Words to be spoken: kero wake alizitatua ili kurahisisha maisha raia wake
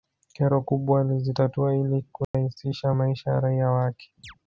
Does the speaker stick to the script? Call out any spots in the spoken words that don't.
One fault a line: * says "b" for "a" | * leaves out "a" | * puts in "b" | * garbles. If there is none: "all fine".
* says "kubwa" for "wake"
* puts in "ya"